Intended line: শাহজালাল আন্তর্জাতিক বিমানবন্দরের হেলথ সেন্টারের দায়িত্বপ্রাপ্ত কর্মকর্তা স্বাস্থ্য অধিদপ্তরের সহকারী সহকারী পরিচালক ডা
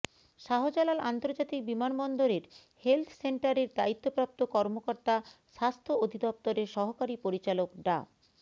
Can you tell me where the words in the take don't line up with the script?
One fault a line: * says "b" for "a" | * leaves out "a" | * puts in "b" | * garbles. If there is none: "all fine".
* leaves out "সহকারী"